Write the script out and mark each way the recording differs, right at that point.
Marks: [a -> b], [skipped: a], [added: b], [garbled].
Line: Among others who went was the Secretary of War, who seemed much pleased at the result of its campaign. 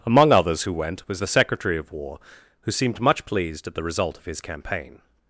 Among others who went was the Secretary of War, who seemed much pleased at the result of [its -> his] campaign.